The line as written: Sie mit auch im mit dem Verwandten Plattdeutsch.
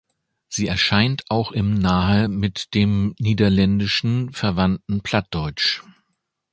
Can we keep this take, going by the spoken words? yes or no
no